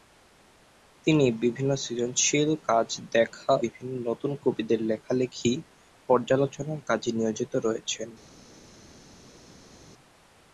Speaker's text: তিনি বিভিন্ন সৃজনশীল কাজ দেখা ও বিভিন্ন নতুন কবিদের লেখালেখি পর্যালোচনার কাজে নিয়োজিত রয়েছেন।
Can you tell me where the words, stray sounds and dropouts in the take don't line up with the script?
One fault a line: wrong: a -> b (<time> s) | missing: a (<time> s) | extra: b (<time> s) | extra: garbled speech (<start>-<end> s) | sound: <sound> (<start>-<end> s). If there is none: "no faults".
missing: ও (3.5 s)